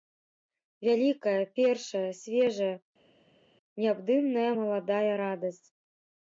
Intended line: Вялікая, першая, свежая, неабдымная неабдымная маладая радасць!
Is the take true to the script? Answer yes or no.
no